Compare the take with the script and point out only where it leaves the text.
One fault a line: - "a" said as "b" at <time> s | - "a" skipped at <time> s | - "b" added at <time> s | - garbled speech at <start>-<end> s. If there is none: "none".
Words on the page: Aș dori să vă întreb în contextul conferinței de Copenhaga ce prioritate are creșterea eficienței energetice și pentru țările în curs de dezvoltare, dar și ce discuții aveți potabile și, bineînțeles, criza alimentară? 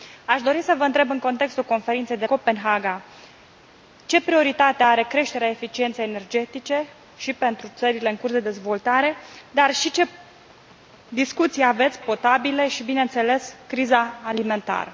none